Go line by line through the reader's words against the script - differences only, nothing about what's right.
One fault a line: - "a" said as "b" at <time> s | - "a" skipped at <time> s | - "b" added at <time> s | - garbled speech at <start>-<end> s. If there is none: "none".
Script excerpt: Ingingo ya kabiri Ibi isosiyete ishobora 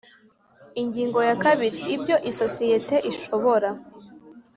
- "Ibi" said as "Ibyo" at 1.9 s